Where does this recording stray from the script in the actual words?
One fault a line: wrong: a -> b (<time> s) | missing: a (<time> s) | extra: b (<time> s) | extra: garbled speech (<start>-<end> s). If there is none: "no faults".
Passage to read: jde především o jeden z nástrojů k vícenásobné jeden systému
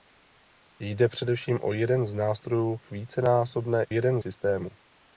no faults